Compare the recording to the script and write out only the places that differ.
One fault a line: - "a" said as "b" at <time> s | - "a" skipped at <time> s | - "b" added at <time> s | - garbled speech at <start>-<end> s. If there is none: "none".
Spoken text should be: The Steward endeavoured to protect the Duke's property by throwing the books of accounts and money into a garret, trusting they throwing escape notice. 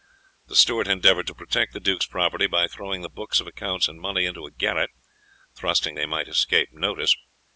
- "throwing" said as "might" at 6.1 s